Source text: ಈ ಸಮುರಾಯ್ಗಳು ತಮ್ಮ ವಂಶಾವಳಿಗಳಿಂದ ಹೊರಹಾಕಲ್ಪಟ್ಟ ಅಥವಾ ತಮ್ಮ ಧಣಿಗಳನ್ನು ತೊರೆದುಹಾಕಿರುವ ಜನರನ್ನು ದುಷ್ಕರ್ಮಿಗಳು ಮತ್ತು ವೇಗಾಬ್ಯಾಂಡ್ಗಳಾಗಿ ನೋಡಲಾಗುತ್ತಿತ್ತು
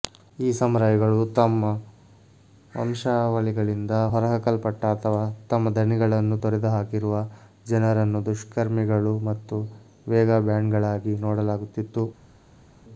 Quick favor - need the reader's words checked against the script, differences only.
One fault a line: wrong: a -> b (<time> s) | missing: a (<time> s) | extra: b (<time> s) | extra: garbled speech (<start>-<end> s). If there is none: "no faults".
no faults